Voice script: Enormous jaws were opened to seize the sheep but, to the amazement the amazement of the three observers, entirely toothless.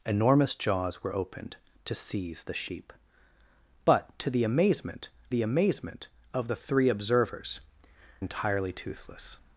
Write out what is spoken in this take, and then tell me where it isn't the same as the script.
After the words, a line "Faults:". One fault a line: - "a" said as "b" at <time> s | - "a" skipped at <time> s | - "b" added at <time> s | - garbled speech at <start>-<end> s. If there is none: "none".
Enormous jaws were opened to seize the sheep but, to the amazement the amazement of the three observers, entirely toothless.
Faults:
none